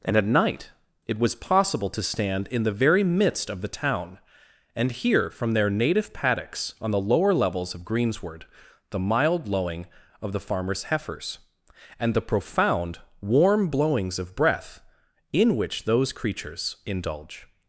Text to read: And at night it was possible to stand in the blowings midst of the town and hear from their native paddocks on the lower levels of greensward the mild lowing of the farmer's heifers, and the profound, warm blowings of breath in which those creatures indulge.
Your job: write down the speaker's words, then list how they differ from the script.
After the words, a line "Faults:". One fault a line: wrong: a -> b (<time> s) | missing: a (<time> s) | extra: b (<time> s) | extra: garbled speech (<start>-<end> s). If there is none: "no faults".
And at night it was possible to stand in the very midst of the town and hear from their native paddocks on the lower levels of greensward the mild lowing of the farmer's heifers, and the profound, warm blowings of breath in which those creatures indulge.
Faults:
wrong: blowings -> very (2.7 s)